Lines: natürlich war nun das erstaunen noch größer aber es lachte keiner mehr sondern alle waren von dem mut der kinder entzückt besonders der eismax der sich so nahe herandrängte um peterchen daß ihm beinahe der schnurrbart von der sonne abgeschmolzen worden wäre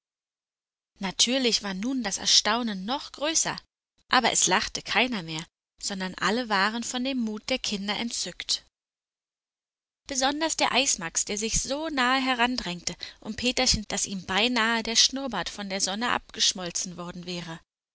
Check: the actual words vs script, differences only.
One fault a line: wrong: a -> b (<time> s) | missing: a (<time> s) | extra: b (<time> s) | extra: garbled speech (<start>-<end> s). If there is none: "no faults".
no faults